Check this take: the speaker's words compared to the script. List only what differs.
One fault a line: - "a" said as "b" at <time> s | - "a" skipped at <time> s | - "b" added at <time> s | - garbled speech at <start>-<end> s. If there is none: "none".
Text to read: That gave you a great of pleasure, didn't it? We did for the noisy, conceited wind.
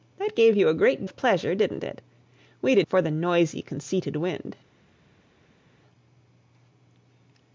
none